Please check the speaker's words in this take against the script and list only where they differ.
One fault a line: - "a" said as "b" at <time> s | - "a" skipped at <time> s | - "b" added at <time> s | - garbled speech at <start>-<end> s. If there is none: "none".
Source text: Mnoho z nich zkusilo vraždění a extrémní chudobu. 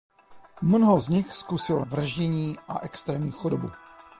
none